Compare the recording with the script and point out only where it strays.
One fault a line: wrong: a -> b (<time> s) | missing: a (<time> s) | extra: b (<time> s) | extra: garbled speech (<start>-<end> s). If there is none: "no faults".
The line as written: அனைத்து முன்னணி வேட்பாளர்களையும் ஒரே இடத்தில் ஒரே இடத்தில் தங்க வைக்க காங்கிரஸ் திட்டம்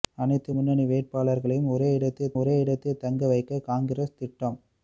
no faults